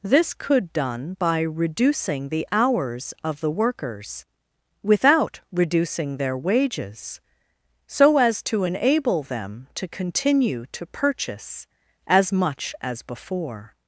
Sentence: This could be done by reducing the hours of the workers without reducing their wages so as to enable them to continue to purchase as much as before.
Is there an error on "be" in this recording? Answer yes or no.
yes